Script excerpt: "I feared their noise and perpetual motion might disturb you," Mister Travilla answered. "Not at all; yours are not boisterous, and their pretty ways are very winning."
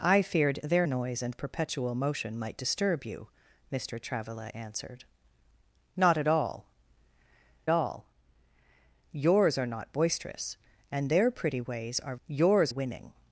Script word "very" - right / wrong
wrong